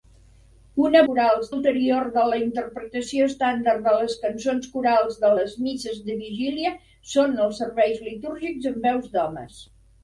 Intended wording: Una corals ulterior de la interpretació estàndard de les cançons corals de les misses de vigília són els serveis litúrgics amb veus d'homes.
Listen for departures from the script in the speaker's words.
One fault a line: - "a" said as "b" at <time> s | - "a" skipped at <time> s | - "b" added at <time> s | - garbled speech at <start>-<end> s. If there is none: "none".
none